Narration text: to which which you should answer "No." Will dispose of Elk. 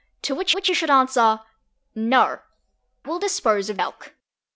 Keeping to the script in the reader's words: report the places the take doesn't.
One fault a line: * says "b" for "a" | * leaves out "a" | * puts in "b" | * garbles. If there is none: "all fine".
all fine